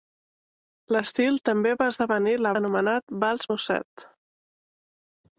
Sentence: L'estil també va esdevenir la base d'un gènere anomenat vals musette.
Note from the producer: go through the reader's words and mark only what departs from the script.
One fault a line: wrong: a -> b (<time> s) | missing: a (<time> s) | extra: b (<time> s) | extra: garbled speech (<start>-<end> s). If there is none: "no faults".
missing: base d'un gènere (2.5 s)